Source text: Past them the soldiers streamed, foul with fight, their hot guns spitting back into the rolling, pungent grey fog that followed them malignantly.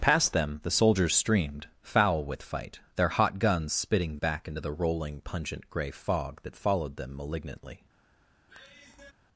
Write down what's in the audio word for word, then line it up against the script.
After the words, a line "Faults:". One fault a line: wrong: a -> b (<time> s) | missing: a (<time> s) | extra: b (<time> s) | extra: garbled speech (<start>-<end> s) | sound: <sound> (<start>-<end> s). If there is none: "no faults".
Past them the soldiers streamed, foul with fight, their hot guns spitting back into the rolling, pungent grey fog that followed them malignantly.
Faults:
sound: sigh (8.5-9.1 s)